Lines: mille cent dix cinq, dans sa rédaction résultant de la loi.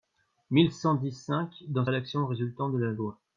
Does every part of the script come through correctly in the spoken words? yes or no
no